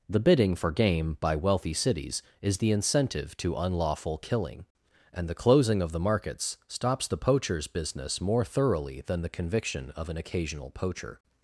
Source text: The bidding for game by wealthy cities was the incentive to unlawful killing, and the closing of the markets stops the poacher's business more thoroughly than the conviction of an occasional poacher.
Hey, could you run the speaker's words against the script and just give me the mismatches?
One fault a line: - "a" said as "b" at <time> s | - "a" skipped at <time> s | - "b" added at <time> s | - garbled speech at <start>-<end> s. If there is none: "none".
- "was" said as "is" at 2.4 s